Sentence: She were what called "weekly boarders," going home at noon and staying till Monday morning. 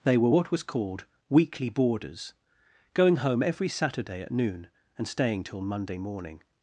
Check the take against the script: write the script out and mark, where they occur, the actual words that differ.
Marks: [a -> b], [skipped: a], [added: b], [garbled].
[She -> They] were what [added: was] called "weekly boarders," going home [added: every Saturday] at noon and staying till Monday morning.